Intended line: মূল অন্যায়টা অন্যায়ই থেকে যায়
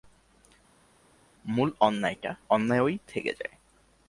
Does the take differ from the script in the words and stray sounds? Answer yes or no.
no